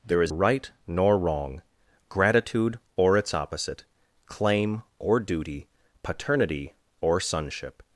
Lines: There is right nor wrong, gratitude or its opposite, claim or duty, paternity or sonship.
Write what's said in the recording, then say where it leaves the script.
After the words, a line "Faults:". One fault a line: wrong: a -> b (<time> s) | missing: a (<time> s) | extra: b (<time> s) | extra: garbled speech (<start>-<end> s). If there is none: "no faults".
There is right nor wrong, gratitude or its opposite, claim or duty, paternity or sonship.
Faults:
no faults